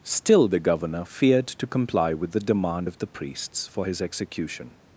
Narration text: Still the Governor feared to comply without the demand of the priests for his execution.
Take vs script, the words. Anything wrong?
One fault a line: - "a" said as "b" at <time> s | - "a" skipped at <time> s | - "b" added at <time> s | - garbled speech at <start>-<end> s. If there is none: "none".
- "without" said as "with" at 2.1 s